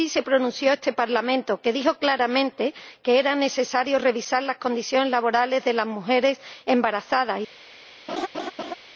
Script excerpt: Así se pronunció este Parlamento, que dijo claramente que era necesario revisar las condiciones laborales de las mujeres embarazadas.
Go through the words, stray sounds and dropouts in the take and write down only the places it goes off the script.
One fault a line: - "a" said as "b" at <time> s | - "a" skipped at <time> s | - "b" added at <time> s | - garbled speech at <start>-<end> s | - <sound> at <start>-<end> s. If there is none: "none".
- laugh at 8.1-8.8 s